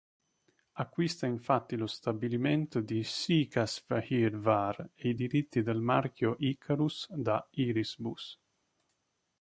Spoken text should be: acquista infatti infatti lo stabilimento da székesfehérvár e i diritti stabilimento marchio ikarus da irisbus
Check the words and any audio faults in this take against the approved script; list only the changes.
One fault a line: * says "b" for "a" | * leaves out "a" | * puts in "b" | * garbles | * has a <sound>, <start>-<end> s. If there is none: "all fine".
* leaves out "infatti"
* says "di" for "da"
* says "del" for "stabilimento"